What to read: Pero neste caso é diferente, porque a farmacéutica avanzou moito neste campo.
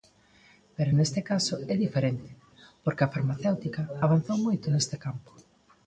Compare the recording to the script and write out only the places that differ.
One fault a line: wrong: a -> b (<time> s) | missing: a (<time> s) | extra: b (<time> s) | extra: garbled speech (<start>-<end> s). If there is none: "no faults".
no faults